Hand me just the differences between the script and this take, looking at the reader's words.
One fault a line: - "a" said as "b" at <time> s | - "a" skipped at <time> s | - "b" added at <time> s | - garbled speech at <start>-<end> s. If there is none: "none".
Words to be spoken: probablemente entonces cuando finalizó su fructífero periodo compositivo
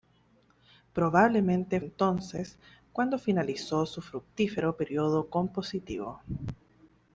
none